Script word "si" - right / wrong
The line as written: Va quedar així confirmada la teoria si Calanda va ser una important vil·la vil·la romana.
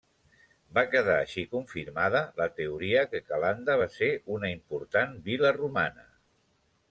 wrong